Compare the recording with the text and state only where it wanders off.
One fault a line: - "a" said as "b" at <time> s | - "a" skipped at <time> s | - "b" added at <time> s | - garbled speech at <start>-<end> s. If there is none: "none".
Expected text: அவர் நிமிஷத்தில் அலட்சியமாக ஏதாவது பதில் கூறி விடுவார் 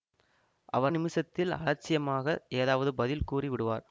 none